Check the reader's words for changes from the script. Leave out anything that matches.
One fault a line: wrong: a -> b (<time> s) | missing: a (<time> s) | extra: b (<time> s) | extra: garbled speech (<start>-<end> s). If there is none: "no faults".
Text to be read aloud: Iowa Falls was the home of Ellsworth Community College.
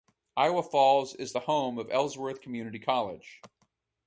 wrong: was -> is (1.1 s)